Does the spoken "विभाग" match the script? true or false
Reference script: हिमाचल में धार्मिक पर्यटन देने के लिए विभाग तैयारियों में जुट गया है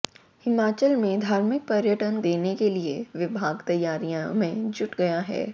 true